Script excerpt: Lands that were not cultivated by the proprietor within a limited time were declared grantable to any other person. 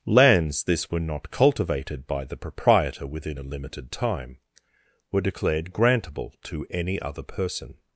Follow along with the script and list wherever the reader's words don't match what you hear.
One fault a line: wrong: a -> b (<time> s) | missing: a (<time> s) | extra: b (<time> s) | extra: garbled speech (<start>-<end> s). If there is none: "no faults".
wrong: that -> this (0.6 s)